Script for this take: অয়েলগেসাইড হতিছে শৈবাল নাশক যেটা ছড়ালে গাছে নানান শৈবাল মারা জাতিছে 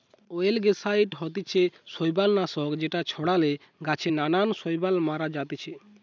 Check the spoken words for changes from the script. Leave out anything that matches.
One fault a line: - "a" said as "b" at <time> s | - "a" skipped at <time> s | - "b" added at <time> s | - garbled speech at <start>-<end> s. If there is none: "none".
none